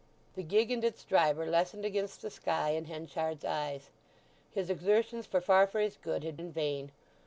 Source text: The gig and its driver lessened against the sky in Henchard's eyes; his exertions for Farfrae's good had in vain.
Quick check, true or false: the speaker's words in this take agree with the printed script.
true